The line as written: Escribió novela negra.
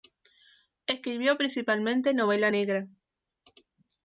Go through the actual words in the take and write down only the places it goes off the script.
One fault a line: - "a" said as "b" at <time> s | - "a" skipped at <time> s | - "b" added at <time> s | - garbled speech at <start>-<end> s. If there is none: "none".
- "principalmente" added at 1.4 s